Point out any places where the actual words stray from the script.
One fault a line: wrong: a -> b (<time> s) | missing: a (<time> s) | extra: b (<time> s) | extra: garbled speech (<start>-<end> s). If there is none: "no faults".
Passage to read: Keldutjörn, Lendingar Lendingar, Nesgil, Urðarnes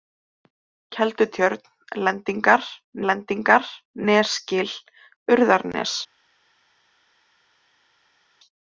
no faults